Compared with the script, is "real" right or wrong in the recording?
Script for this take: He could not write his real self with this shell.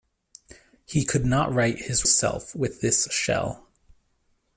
wrong